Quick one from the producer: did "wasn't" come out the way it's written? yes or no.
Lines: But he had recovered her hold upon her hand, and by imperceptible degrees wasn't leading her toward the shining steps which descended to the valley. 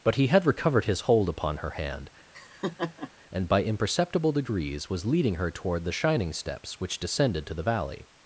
no